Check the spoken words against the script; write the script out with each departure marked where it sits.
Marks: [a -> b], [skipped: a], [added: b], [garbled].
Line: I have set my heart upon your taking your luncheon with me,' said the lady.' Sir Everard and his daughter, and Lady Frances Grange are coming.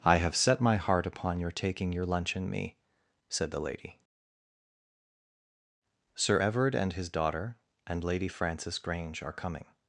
I have set my heart upon your taking your luncheon [skipped: with] me,' said the lady.' Sir Everard and his daughter, and Lady Frances Grange are coming.